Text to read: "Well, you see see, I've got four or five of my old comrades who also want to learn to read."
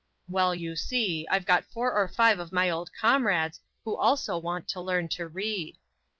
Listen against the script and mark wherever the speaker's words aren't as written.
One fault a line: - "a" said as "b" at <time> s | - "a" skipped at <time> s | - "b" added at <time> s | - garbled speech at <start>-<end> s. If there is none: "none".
- "see" skipped at 1.3 s